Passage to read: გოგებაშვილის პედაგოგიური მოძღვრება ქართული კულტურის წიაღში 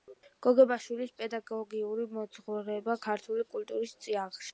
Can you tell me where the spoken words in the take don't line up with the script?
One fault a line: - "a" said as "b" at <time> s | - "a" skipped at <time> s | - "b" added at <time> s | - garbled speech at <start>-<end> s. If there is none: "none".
none